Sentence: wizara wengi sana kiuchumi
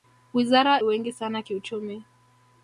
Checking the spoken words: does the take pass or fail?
pass